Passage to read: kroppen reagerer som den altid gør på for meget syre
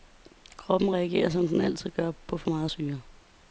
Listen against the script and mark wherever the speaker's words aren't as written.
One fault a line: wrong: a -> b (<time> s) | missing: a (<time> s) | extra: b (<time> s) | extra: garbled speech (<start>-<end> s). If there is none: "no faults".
no faults